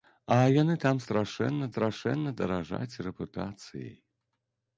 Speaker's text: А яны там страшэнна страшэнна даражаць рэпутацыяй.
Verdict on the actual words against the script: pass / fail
pass